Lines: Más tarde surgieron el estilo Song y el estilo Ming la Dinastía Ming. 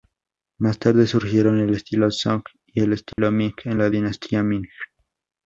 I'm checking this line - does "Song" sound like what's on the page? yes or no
yes